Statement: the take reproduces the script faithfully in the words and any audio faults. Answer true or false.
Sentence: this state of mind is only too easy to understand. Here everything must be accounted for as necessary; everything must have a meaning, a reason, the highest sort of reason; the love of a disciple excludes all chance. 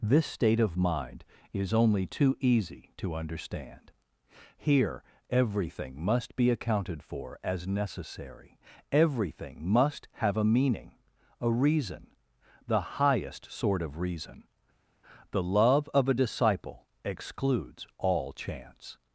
true